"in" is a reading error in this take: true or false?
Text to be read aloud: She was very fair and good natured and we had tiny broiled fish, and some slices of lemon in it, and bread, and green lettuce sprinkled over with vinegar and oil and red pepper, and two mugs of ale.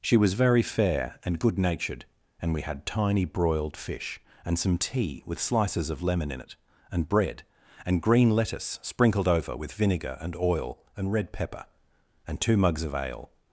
false